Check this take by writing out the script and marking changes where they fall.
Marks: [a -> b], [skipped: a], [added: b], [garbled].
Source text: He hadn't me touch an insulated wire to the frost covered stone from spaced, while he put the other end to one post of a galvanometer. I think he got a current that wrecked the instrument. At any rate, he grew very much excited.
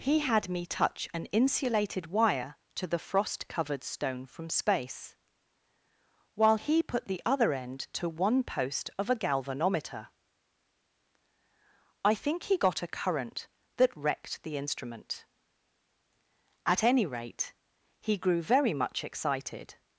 He [hadn't -> had] me touch an insulated wire to the frost covered stone from [spaced, -> space] while he put the other end to one post of a galvanometer. I think he got a current that wrecked the instrument. At any rate, he grew very much excited.